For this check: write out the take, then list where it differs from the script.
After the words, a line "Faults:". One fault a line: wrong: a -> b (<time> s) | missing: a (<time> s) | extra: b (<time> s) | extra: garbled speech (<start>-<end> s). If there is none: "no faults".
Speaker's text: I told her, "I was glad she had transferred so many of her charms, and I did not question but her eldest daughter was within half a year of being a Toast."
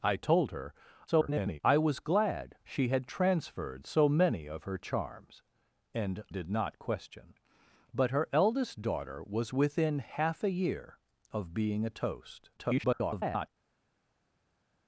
I told her, [garbled] "I was glad she had transferred so many of her charms, and did not question but her eldest daughter was within half a year of being a Toast." [garbled]
Faults:
extra: garbled speech (1.1-1.6 s)
missing: I (6.2 s)
extra: garbled speech (12.6-13.5 s)